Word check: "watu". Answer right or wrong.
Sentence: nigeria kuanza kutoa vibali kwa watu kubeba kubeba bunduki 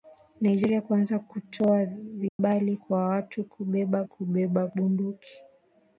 right